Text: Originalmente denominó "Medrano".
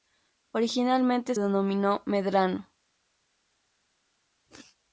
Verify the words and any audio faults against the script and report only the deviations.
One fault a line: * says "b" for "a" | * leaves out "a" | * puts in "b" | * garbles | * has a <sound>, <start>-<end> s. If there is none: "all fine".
all fine